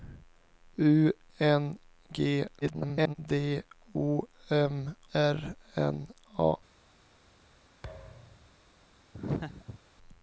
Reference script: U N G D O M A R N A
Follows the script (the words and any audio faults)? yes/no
no